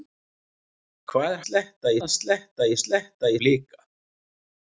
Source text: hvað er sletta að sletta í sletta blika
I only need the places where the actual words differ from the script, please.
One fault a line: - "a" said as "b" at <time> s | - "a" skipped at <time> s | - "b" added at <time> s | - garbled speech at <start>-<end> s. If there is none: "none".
none